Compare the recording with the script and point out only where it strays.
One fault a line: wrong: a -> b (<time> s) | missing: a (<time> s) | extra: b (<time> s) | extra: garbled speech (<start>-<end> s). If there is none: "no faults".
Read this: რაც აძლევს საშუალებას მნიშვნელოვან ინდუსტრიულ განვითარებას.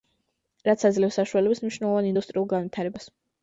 no faults